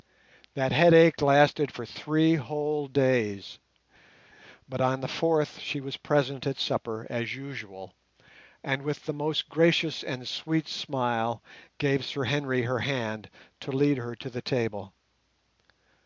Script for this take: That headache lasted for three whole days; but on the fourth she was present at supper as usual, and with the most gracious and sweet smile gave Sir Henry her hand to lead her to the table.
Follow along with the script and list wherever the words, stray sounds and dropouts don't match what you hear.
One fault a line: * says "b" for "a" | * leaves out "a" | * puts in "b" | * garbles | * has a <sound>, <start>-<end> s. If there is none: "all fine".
all fine